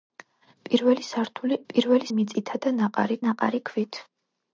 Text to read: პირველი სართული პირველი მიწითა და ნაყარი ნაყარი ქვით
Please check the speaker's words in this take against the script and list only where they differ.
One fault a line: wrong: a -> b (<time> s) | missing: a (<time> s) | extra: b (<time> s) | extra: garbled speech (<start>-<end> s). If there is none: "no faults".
no faults